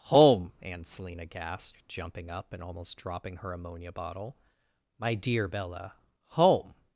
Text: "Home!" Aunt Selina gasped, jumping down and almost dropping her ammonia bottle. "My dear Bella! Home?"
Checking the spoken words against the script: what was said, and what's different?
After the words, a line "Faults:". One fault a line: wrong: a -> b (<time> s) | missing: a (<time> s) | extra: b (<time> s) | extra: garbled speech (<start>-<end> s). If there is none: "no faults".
"Home!" Aunt Selina gasped, jumping up and almost dropping her ammonia bottle. "My dear Bella! Home?"
Faults:
wrong: down -> up (2.3 s)